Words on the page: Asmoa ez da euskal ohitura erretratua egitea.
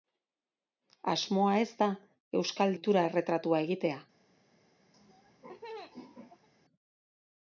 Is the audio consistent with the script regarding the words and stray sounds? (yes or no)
no